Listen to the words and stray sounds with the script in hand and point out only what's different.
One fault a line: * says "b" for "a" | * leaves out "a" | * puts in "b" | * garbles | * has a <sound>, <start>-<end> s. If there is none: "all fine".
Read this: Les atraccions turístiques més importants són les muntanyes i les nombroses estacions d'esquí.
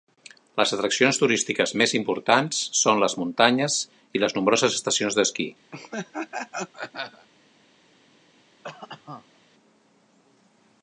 * has a laugh, 5.7-7.3 s
* has a cough, 8.6-9.4 s